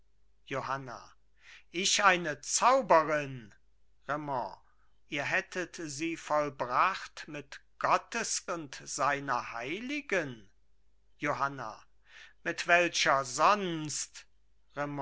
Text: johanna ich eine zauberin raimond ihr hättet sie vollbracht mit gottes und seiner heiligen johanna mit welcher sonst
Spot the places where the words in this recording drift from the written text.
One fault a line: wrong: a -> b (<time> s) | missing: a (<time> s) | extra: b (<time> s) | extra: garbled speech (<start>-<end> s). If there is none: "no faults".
no faults